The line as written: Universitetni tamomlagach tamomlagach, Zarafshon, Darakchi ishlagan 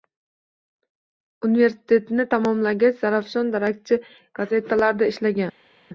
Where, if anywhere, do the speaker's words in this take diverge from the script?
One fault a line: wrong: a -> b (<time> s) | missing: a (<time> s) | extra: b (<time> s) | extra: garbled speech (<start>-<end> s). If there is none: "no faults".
missing: tamomlagach (3.0 s)
extra: gazetalarida (4.4 s)